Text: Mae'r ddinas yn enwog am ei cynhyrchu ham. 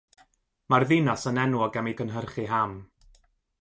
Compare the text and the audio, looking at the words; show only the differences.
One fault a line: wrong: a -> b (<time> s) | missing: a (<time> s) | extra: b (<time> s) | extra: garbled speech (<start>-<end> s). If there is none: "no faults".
no faults